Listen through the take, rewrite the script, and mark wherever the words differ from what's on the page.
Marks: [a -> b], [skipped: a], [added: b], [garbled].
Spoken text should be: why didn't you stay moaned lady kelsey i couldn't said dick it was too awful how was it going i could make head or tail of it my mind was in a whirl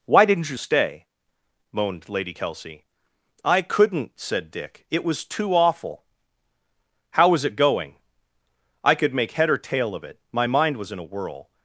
why didn't you stay moaned lady kelsey i couldn't said dick it was too awful how was it going i could make head or tail of it my mind was in a whirl